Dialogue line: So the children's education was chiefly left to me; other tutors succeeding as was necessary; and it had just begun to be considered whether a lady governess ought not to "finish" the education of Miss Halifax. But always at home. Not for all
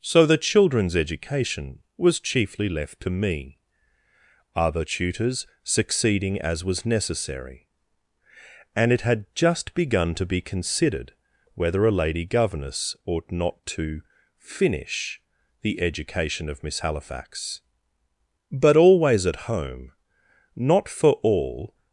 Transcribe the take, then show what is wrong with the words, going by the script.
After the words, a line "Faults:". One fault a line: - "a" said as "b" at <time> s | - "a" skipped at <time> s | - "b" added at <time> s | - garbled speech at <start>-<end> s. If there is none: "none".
So the children's education was chiefly left to me; other tutors succeeding as was necessary; and it had just begun to be considered whether a lady governess ought not to "finish" the education of Miss Halifax. But always at home. Not for all
Faults:
none